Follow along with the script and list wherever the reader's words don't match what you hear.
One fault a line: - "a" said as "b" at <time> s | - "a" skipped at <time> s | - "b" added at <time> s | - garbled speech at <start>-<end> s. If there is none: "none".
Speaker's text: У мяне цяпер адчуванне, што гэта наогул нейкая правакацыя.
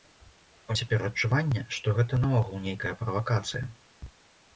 - "мяне" skipped at 0.8 s